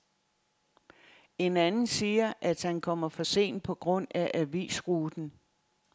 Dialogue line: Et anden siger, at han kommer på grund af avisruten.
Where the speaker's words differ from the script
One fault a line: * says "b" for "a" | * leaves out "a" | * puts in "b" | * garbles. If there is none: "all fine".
* says "En" for "Et"
* puts in "for sent"